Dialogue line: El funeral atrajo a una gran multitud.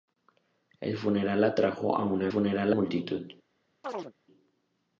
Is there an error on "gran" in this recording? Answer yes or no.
yes